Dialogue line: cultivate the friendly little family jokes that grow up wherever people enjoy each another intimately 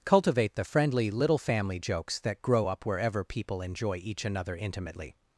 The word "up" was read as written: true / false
true